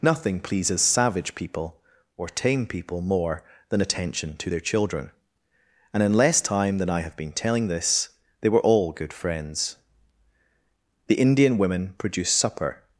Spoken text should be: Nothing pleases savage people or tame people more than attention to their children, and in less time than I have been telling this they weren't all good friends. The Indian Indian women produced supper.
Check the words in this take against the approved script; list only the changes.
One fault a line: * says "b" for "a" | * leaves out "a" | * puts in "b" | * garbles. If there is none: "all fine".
* says "were" for "weren't"
* leaves out "Indian"